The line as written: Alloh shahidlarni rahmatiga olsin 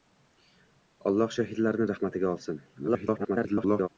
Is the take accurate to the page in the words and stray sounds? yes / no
no